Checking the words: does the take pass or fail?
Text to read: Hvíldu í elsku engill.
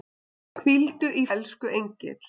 pass